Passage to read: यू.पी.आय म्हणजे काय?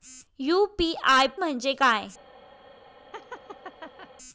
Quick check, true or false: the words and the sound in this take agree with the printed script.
false